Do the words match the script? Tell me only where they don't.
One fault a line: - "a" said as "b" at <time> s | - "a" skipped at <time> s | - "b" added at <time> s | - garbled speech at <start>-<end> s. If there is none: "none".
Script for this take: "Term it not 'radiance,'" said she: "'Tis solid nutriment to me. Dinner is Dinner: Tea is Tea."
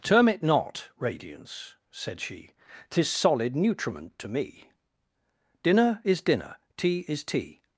none